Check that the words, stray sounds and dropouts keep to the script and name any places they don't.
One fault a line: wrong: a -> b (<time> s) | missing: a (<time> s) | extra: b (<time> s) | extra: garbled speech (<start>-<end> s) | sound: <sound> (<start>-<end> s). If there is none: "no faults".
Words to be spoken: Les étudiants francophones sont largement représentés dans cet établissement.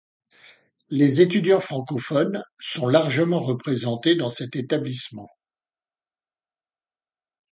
no faults